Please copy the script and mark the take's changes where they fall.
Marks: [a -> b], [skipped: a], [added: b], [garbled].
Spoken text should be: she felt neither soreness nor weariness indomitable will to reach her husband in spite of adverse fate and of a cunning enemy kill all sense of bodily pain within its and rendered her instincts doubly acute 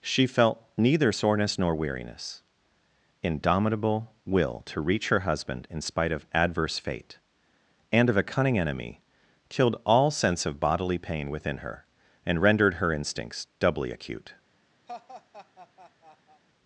she felt neither soreness nor weariness indomitable will to reach her husband in spite of adverse fate and of a cunning enemy [kill -> killed] all sense of bodily pain within [its -> her] and rendered her instincts doubly acute